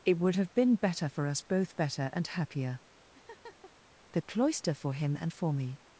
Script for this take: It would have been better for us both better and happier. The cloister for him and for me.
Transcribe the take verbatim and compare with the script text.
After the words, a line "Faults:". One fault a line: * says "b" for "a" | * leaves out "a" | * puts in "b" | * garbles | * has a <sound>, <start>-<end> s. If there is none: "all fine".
It would have been better for us both better and happier. The cloister for him and for me.
Faults:
* has a laugh, 3.1-3.7 s